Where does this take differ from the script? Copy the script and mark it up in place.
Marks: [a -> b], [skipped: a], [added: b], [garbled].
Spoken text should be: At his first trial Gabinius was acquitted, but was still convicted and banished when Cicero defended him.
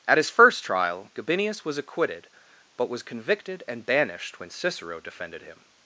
At his first trial Gabinius was acquitted, but was [skipped: still] convicted and banished when Cicero defended him.